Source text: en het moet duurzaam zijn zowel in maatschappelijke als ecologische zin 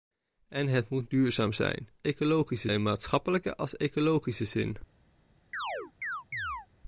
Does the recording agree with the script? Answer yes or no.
no